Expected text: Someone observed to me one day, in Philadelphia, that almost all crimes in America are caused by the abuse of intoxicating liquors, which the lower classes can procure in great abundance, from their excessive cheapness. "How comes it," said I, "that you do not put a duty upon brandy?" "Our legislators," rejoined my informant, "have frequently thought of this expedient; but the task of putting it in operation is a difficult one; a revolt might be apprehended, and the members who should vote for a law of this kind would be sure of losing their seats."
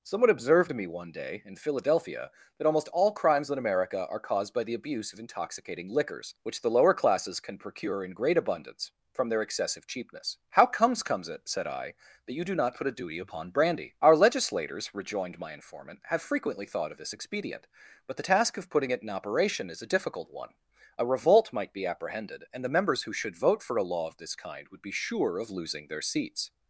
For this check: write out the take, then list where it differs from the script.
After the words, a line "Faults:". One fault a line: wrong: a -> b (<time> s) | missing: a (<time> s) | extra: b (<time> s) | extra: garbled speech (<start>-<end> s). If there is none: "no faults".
Someone observed to me one day, in Philadelphia, that almost all crimes in America are caused by the abuse of intoxicating liquors, which the lower classes can procure in great abundance, from their excessive cheapness. "How comes comes it," said I, "that you do not put a duty upon brandy?" "Our legislators," rejoined my informant, "have frequently thought of this expedient; but the task of putting it in operation is a difficult one; a revolt might be apprehended, and the members who should vote for a law of this kind would be sure of losing their seats."
Faults:
extra: comes (11.0 s)